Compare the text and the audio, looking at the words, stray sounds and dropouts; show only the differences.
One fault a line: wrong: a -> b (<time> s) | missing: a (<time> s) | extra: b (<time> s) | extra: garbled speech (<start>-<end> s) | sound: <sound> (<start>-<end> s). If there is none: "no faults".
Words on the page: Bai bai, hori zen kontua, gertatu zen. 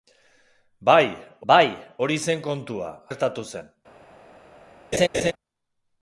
sound: laugh (4.9-5.3 s)